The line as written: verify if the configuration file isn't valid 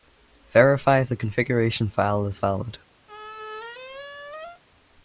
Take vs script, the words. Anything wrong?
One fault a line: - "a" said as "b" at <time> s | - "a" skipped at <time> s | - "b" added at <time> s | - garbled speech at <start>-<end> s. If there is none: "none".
- "isn't" said as "is" at 2.3 s